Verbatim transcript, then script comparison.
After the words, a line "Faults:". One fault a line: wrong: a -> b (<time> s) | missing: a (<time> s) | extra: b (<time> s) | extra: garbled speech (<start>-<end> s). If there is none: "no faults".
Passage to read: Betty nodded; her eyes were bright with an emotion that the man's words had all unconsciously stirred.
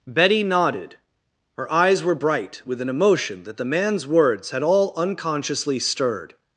Betty nodded; her eyes were bright with an emotion that the man's words had all unconsciously stirred.
Faults:
no faults